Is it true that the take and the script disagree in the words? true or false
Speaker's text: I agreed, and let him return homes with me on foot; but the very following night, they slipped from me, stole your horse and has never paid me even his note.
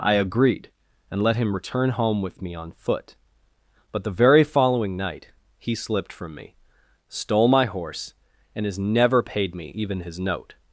true